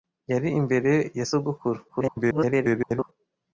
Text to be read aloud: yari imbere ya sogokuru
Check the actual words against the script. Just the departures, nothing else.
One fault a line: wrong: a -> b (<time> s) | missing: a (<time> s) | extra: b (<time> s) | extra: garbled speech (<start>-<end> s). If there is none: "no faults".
extra: garbled speech (1.9-3.1 s)